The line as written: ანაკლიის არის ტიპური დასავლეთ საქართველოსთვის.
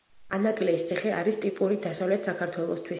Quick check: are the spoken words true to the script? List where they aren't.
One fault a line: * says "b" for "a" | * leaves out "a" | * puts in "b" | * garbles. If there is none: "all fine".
* puts in "ციხე"